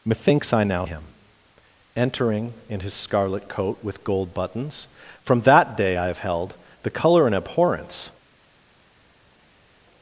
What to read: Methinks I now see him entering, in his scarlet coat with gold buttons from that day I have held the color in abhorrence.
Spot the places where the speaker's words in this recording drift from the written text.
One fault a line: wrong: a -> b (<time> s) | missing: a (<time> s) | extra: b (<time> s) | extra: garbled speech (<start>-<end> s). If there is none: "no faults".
missing: see (0.8 s)